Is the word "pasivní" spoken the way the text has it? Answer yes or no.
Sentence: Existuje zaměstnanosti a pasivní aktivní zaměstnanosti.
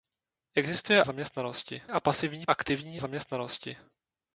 yes